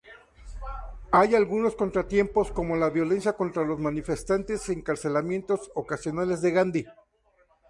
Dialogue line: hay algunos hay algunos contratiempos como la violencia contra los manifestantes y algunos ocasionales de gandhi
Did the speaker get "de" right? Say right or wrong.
right